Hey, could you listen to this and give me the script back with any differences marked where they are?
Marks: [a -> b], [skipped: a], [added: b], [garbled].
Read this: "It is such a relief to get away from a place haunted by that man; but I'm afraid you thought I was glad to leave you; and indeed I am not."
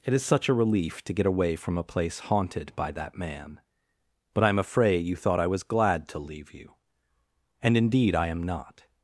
"It is such a relief to get away from a place haunted by that man; but I'm afraid you thought I was glad to leave you; and indeed I am not."